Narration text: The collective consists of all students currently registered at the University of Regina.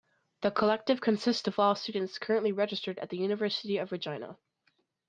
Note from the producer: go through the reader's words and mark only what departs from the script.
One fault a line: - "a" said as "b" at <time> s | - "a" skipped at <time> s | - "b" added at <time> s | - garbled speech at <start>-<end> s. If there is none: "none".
none